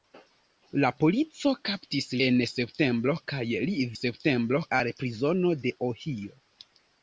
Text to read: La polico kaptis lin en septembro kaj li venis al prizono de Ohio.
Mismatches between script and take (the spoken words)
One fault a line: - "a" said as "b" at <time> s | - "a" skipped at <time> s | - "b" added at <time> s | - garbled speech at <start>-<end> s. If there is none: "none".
- "lin" skipped at 2.1 s
- "venis" said as "septembro" at 4.0 s